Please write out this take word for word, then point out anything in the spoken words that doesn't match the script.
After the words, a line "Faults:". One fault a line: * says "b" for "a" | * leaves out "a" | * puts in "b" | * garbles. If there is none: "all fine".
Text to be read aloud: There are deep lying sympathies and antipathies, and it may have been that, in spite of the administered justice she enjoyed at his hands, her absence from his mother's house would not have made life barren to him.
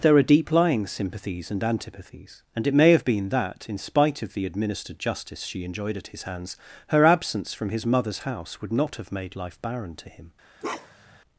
There are deep lying sympathies and antipathies, and it may have been that, in spite of the administered justice she enjoyed at his hands, her absence from his mother's house would not have made life barren to him.
Faults:
all fine